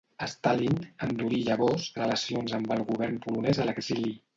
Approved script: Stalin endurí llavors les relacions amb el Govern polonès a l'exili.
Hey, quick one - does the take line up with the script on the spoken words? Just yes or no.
no